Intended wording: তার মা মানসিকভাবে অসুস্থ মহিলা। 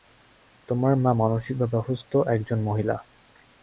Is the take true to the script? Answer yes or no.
no